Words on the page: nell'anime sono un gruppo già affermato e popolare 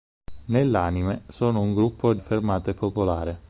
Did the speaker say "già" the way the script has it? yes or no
no